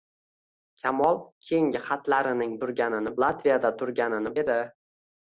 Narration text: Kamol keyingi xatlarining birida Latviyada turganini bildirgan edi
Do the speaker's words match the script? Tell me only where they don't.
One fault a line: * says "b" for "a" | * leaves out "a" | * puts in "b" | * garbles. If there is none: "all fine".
* says "turganini" for "birida"
* leaves out "bildirgan"